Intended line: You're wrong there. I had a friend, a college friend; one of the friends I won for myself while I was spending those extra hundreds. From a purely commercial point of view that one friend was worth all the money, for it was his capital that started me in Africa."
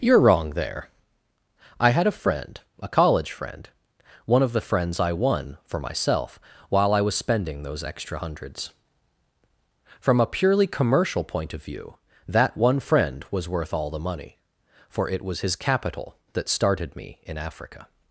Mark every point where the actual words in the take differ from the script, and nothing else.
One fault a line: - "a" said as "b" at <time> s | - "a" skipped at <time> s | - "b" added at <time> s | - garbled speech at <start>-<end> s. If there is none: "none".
none